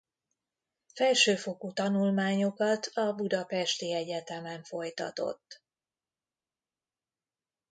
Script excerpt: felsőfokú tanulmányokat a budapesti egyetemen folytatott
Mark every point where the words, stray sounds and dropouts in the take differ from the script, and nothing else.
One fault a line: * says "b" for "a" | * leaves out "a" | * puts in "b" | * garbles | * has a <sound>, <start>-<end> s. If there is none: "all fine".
all fine